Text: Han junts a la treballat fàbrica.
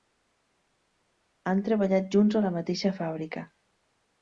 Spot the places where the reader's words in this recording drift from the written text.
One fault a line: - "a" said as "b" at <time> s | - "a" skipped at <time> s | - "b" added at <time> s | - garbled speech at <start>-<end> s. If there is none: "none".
- "treballat" added at 1.7 s
- "treballat" said as "mateixa" at 2.6 s